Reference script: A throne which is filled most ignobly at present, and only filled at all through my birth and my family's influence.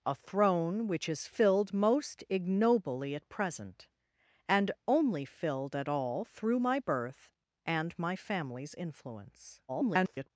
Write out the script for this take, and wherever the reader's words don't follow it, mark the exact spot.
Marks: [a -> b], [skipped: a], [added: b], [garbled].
A throne which is filled most ignobly at present, and only filled at all through my birth and my family's influence. [garbled]